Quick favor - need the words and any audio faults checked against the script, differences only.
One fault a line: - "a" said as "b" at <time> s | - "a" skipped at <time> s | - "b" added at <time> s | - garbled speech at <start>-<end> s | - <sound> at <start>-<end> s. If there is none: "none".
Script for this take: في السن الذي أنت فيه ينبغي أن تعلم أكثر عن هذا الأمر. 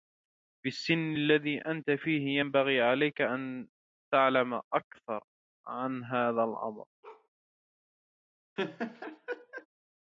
- "عليك" added at 2.8 s
- bark at 7.0-7.3 s
- laugh at 8.6-9.7 s